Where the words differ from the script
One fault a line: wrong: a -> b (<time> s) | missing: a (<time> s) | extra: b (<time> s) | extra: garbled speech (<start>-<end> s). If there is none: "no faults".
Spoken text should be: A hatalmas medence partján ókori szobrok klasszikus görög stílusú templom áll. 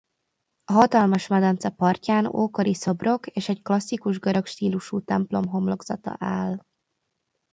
extra: és egy (3.3 s)
extra: homlokzata (5.5 s)